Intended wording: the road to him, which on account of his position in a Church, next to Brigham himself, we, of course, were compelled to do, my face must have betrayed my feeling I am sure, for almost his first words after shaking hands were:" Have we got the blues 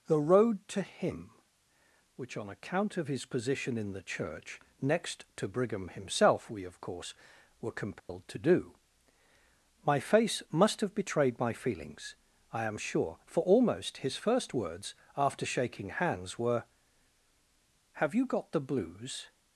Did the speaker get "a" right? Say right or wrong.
wrong